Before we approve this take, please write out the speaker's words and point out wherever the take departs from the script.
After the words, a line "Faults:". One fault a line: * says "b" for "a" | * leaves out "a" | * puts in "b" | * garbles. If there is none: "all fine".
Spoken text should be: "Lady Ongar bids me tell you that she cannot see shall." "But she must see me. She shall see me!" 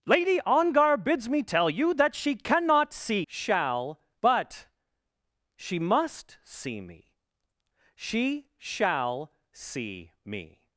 "Lady Ongar bids me tell you that she cannot see shall." "But she must see me. She shall see me!"
Faults:
all fine